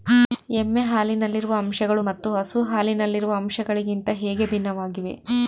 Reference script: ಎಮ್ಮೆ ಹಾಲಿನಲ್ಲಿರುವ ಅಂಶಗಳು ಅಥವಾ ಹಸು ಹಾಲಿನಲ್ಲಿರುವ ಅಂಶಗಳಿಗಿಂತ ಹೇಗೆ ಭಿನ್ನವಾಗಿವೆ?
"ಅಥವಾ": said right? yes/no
no